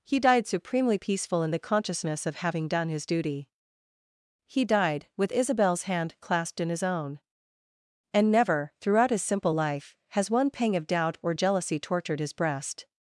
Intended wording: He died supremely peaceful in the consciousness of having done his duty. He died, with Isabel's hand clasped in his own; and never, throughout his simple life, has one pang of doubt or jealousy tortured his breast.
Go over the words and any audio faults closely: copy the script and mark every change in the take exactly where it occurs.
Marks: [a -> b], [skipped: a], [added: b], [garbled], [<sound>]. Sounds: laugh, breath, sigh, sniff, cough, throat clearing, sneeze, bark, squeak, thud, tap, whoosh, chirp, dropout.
He died supremely peaceful in the consciousness of having done his duty. He died, with Isabel's hand clasped in his own; and never, throughout his simple life, has one pang of doubt or jealousy tortured his breast.